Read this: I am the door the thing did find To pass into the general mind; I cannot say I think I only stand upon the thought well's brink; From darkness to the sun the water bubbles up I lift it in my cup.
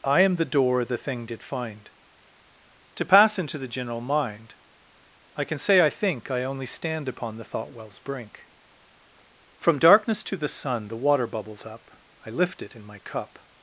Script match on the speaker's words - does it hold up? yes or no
no